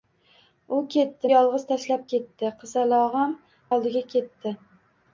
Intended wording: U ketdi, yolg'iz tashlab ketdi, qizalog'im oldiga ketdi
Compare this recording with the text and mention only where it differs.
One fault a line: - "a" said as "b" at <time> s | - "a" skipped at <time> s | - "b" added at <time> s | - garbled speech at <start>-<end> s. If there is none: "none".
none